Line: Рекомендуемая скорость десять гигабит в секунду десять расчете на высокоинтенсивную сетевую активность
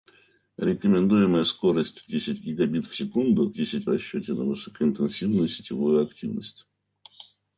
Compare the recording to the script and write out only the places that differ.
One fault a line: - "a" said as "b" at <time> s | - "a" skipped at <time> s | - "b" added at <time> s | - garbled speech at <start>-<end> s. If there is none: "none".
none